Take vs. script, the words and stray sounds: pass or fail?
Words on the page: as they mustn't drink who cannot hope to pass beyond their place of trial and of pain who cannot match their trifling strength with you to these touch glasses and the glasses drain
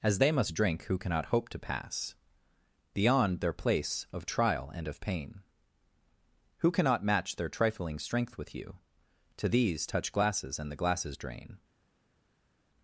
fail